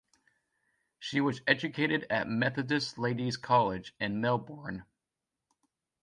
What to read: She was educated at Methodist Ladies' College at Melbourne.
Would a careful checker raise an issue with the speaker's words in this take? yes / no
yes